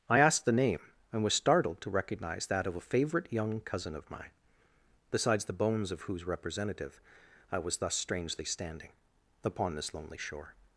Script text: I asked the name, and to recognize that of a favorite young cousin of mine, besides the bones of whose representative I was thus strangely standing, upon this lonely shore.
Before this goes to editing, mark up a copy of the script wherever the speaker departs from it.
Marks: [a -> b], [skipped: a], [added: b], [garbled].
I asked the name, and [added: was startled] to recognize that of a favorite young cousin of mine, besides the bones of whose representative I was thus strangely standing, upon this lonely shore.